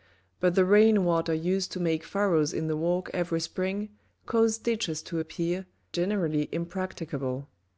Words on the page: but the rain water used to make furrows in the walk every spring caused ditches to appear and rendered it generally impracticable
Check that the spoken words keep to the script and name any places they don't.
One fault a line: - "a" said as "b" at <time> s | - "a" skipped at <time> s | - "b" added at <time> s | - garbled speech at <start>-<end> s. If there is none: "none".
- "and rendered it" skipped at 5.7 s